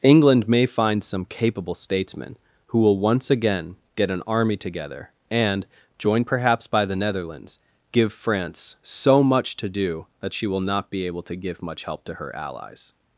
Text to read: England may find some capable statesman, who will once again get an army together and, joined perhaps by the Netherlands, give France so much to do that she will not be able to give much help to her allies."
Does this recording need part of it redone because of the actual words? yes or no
no